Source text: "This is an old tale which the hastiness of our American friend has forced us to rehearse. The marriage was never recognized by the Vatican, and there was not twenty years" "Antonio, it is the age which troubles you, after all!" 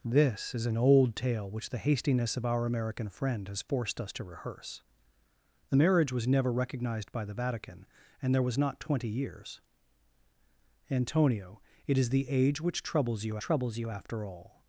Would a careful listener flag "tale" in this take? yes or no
no